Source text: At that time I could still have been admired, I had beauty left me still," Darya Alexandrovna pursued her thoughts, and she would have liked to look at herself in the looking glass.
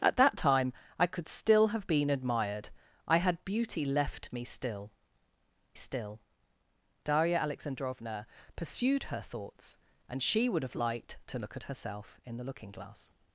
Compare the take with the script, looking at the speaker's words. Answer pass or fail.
fail